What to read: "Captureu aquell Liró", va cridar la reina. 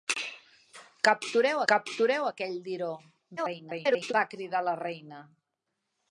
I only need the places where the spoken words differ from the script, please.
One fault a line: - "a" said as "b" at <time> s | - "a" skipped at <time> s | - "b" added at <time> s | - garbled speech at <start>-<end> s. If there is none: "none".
- "captureu" added at 1.7 s
- garbled speech at 3.4-4.1 s